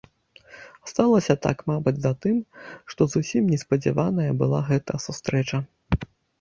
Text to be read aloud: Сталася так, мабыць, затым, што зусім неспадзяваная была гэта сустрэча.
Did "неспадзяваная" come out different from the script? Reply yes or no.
no